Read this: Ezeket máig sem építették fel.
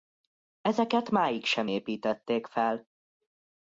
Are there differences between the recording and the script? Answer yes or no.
no